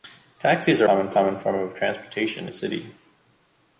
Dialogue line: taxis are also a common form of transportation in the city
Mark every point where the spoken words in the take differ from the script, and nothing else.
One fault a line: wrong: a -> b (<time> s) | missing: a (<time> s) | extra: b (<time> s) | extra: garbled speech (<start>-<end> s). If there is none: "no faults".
wrong: also -> common (0.8 s)
missing: in (2.5 s)